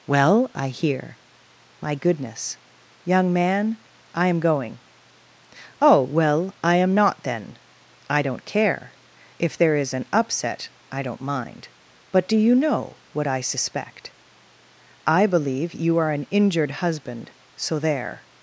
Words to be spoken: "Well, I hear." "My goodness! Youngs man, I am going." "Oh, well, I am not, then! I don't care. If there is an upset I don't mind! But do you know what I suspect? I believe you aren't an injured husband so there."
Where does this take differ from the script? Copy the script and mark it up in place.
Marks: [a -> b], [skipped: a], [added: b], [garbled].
"Well, I hear." "My goodness! [Youngs -> Young] man, I am going." "Oh, well, I am not, then! I don't care. If there is an upset I don't mind! But do you know what I suspect? I believe you [aren't -> are] an injured husband so there."